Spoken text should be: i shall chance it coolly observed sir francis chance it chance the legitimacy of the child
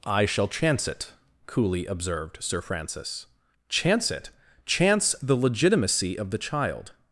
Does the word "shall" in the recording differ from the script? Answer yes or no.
no